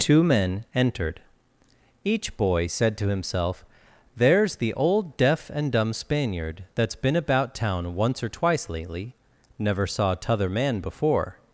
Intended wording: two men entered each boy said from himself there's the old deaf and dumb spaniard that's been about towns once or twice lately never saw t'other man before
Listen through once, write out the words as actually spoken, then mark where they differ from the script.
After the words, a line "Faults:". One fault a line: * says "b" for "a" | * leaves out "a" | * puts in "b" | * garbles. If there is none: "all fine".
two men entered each boy said to himself there's the old deaf and dumb spaniard that's been about town once or twice lately never saw t'other man before
Faults:
* says "to" for "from"
* says "town" for "towns"